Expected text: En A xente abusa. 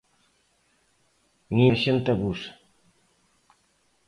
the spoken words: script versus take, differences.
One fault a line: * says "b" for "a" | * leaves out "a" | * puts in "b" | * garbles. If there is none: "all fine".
all fine